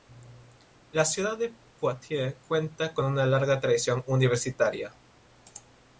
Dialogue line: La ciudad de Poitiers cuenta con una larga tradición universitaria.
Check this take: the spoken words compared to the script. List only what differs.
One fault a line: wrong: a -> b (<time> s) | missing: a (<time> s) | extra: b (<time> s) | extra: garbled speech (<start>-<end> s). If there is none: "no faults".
no faults